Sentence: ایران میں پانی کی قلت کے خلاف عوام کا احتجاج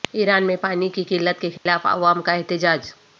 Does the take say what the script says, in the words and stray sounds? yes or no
no